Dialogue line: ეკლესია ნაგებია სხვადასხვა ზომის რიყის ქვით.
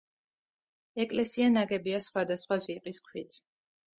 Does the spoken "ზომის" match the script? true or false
false